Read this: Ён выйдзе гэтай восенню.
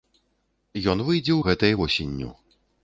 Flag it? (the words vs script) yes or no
no